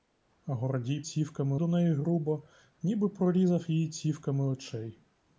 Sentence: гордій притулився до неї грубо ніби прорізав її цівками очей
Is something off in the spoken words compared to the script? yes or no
yes